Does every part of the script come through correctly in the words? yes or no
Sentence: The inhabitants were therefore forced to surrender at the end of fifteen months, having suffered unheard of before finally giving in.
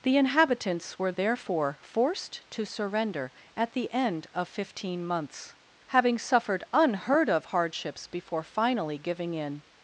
no